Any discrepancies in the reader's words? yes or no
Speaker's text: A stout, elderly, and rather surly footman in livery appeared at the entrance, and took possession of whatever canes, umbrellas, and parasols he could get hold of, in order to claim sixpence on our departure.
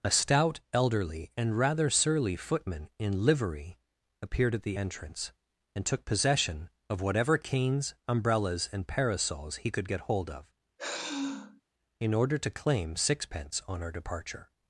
no